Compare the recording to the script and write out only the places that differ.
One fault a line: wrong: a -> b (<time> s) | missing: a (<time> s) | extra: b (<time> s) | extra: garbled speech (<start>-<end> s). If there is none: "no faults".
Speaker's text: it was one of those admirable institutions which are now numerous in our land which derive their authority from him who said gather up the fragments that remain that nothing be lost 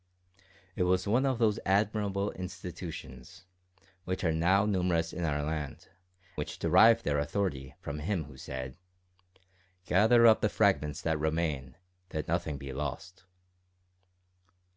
no faults